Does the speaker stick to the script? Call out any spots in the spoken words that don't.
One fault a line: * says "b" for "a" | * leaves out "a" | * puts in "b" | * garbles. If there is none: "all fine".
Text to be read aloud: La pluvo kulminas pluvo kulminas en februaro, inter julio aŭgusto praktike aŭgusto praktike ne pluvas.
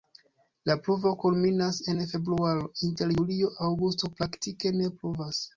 * leaves out "pluvo kulminas"
* leaves out "aŭgusto praktike"